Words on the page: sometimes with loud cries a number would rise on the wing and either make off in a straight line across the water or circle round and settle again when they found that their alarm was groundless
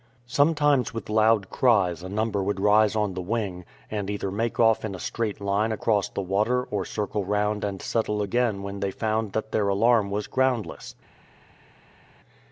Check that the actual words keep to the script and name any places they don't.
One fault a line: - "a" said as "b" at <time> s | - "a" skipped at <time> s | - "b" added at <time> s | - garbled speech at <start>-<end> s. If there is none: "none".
none